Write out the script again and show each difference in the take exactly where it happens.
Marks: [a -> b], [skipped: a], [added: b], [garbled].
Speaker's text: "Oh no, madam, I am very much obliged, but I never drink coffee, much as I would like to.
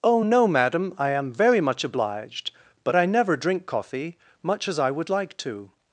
"Oh no, madam, I am very much obliged, but I never drink coffee, much as I would like to.